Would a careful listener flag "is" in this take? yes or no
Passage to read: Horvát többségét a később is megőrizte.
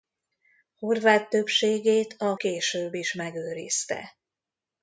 no